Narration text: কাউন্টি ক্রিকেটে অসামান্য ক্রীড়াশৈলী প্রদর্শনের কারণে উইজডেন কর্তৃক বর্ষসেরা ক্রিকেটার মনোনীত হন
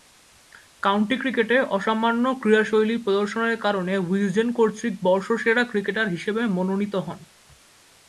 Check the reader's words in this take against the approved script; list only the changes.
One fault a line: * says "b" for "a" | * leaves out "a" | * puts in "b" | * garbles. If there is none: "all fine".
* puts in "হিসেবে"